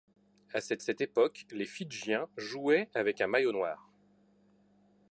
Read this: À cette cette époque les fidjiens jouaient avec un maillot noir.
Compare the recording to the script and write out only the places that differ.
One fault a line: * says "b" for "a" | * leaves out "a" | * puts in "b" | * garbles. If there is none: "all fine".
all fine